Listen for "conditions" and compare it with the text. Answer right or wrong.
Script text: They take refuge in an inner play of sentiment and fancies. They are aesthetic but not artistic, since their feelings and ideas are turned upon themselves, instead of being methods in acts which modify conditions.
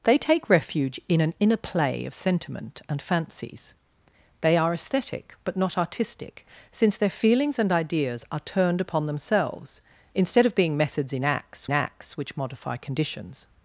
right